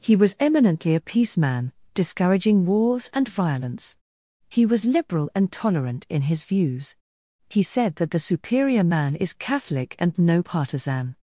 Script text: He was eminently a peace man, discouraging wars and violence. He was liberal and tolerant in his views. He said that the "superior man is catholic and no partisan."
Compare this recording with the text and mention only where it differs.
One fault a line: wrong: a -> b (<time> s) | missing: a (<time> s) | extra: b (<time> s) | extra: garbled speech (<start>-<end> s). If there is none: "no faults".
no faults